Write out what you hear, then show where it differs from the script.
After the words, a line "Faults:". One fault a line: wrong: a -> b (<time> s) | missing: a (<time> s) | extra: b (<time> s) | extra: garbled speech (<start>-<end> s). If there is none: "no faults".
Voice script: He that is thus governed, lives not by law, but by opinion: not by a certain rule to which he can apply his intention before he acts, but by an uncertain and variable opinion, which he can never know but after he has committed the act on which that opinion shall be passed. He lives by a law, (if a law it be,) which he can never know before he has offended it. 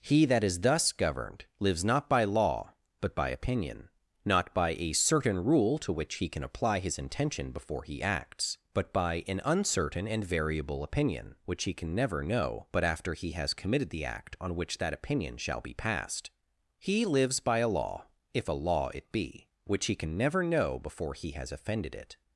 He that is thus governed, lives not by law, but by opinion: not by a certain rule to which he can apply his intention before he acts, but by an uncertain and variable opinion, which he can never know but after he has committed the act on which that opinion shall be passed. He lives by a law, (if a law it be,) which he can never know before he has offended it.
Faults:
no faults